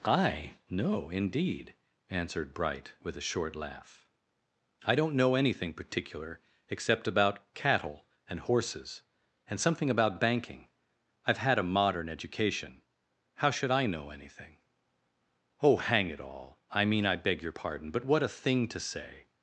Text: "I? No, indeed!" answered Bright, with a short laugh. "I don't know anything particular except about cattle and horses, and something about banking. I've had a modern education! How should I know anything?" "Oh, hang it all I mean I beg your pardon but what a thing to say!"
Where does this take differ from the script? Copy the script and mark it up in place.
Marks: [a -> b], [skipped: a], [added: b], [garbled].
"I? No, indeed!" answered Bright, with a short laugh. "I don't know anything particular except about cattle and horses, and something about banking. I've had a modern education! How should I know anything?" "Oh, hang it all I mean I beg your pardon but what a thing to say!"